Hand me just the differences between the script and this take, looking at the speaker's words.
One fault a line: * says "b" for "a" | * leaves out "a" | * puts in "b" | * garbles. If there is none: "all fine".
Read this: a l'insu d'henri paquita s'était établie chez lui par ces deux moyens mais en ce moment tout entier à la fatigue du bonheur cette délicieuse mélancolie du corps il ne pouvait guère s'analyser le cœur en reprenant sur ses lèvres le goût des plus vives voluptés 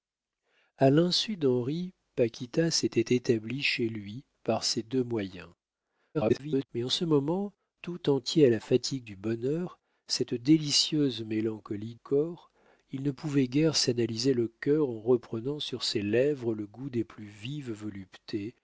* garbles
* leaves out "du"